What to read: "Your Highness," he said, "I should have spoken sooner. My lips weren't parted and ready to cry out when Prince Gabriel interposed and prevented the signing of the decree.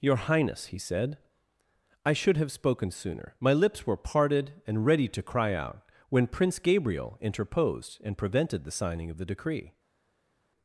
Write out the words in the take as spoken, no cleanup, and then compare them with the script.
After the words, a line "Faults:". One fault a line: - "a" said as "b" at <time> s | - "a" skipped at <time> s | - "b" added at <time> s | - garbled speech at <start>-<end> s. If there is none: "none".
"Your Highness," he said, "I should have spoken sooner. My lips were parted and ready to cry out when Prince Gabriel interposed and prevented the signing of the decree.
Faults:
- "weren't" said as "were" at 3.9 s